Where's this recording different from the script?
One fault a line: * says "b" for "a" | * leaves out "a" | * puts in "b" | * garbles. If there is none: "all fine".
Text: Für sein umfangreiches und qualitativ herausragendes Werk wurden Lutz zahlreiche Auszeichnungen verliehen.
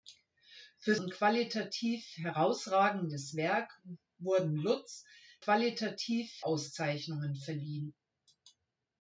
* leaves out "sein umfangreiches"
* says "qualitativ" for "zahlreiche"